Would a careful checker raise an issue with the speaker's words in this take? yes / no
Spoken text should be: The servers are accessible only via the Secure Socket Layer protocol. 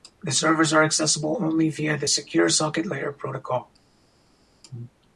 no